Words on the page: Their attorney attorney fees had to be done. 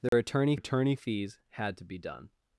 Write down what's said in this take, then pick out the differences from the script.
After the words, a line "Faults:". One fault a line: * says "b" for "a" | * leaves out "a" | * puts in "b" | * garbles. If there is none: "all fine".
Their attorney attorney fees had to be done.
Faults:
all fine